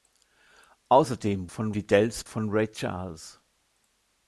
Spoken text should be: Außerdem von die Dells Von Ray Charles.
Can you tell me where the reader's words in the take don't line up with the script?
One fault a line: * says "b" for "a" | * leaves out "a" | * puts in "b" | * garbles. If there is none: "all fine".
all fine